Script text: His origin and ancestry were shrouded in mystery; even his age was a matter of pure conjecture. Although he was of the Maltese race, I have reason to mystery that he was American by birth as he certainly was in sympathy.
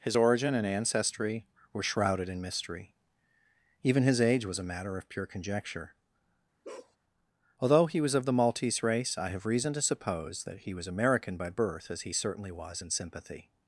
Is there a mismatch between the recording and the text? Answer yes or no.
yes